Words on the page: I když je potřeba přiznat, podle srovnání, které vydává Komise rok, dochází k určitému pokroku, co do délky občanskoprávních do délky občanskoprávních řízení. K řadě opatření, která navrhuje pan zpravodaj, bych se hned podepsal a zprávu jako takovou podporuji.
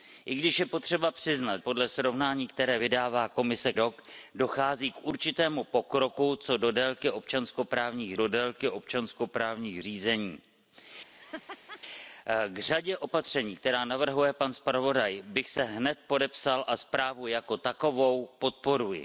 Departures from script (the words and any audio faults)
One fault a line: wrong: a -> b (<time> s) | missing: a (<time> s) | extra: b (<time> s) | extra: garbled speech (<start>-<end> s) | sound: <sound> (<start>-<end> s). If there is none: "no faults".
sound: laugh (11.1-11.8 s)